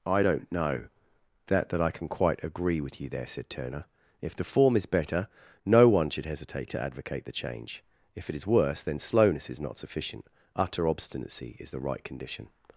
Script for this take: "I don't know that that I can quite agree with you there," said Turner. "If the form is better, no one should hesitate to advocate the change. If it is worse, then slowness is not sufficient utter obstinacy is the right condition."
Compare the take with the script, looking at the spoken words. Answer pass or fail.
pass